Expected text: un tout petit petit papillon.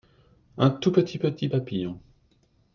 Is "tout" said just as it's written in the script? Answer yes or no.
yes